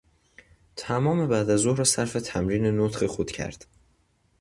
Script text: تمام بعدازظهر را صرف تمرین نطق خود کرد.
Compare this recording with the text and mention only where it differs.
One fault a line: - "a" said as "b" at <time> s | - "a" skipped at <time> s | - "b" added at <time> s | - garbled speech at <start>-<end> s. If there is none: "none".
none